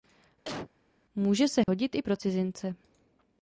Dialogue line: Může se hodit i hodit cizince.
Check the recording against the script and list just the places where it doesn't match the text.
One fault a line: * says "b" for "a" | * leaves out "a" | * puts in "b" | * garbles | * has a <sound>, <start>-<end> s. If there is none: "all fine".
* has a cough, 0.4-0.7 s
* has a dropout, 1.6-1.7 s
* says "pro" for "hodit"